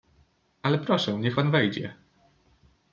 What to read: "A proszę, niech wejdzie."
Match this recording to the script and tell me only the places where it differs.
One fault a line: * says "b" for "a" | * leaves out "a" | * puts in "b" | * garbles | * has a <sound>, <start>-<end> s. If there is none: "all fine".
* says "Ale" for "A"
* puts in "pan"